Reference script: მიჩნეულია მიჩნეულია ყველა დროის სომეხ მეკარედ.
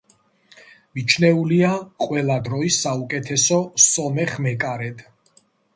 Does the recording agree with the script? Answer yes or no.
no